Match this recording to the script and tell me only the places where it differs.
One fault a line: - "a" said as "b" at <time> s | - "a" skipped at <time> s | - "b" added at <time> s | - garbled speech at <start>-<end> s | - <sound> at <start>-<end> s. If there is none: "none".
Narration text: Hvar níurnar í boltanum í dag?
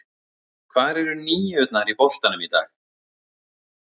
- "eru" added at 1.0 s